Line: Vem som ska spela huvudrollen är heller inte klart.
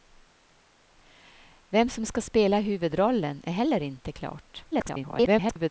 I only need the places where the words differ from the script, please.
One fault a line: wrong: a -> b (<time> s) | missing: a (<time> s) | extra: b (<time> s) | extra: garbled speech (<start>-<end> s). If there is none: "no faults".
extra: garbled speech (4.7-5.7 s)